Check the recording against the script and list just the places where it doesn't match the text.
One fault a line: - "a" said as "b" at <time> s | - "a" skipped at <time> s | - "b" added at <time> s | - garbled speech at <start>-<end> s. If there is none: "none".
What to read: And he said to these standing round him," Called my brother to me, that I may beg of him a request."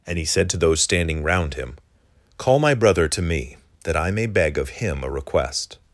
- "these" said as "those" at 0.6 s
- "Called" said as "Call" at 2.4 s